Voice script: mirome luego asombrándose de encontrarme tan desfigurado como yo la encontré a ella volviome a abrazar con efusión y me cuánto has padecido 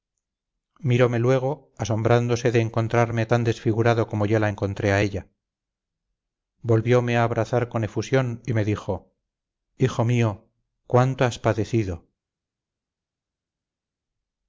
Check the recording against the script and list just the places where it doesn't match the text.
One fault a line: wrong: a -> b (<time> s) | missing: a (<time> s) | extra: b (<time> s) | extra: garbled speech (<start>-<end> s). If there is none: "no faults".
extra: dijo hijo mío (8.6 s)